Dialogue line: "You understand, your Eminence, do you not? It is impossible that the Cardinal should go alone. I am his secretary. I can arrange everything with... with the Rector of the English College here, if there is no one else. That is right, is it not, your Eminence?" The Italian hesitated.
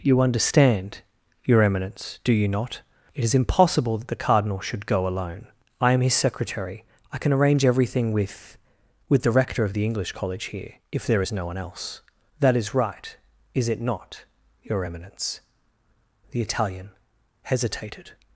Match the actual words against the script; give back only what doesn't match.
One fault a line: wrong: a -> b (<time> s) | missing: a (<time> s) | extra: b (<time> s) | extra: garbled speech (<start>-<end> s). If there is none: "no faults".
no faults